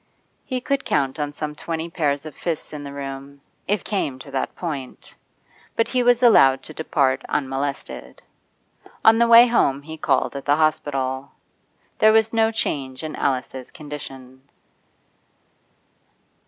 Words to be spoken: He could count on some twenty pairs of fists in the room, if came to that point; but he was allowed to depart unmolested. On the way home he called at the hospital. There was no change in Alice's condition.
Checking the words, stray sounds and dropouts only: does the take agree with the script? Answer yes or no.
yes